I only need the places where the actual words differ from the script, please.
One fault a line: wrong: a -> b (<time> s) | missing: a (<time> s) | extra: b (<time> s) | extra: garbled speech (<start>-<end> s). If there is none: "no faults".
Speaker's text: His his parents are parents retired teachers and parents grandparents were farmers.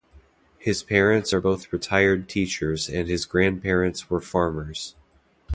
missing: his (0.8 s)
wrong: parents -> both (1.4 s)
wrong: parents -> his (3.1 s)